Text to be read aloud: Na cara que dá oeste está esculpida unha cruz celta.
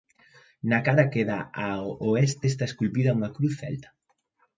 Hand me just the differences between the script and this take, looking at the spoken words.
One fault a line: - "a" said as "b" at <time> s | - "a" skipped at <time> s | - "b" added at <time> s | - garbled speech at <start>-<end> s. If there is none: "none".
- "ao" added at 1.7 s